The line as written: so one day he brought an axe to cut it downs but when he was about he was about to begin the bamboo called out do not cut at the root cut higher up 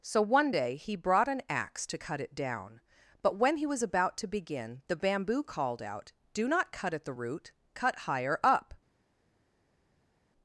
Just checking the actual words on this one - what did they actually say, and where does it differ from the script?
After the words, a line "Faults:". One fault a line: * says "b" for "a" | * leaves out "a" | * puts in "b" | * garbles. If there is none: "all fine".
so one day he brought an axe to cut it down but when he was about to begin the bamboo called out do not cut at the root cut higher up
Faults:
* says "down" for "downs"
* leaves out "he was about"